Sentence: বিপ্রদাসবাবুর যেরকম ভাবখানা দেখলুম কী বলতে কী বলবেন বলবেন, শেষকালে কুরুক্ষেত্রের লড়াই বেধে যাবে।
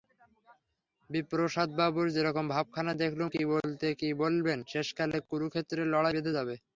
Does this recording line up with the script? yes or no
no